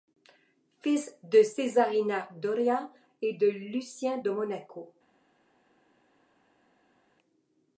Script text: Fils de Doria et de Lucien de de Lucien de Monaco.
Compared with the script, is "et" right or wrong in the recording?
right